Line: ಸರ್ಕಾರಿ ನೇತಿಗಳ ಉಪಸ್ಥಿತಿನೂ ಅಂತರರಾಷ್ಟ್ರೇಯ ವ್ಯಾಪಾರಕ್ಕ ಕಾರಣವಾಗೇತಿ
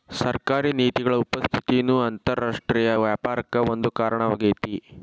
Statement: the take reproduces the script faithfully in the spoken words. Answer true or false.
false